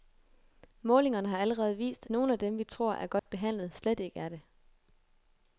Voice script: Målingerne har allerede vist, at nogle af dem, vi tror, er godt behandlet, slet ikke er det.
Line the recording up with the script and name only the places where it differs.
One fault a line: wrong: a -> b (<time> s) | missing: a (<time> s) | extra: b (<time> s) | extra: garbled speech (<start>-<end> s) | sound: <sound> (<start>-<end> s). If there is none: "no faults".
missing: at (2.1 s)
sound: dropout (3.2-3.3 s)